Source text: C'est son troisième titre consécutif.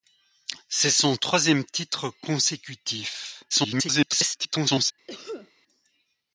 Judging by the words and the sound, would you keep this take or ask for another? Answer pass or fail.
fail